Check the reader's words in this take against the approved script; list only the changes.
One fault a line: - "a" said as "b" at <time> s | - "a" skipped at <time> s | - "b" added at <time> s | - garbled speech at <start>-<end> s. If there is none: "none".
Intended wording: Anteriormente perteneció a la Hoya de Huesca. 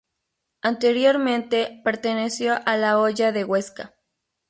none